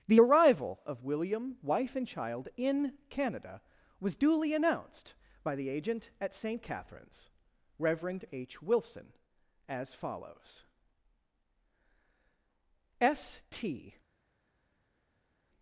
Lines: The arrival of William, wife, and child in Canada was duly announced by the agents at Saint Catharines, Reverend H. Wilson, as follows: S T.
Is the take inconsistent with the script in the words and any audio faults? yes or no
yes